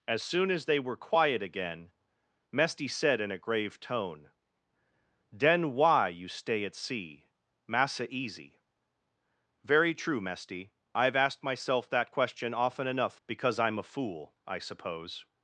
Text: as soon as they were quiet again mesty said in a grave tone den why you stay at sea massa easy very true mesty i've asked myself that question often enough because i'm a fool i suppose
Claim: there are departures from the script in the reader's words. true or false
false